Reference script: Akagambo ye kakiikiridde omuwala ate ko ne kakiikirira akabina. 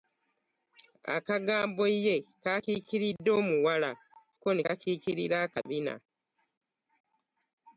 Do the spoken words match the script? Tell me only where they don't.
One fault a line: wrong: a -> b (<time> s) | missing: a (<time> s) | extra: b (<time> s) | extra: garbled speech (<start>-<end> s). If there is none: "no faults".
missing: ate (3.9 s)